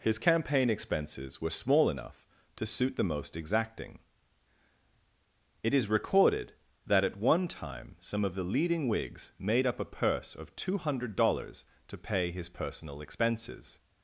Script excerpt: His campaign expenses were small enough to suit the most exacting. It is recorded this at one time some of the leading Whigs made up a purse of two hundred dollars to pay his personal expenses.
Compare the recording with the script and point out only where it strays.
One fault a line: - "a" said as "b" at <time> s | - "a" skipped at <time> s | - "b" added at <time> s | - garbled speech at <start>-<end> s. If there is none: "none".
- "this" said as "that" at 6.9 s